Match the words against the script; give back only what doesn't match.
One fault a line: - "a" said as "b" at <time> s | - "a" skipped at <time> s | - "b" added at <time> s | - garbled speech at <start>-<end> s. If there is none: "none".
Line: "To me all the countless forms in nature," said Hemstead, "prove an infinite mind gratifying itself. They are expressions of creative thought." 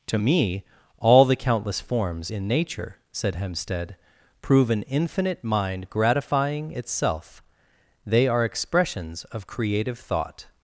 none